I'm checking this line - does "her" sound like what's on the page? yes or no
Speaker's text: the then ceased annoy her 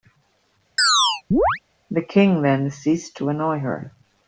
yes